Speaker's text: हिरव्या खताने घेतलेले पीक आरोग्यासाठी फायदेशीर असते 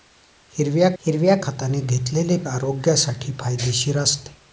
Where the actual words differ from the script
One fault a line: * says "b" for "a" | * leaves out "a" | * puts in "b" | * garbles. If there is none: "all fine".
* puts in "हिरव्या"
* leaves out "पीक"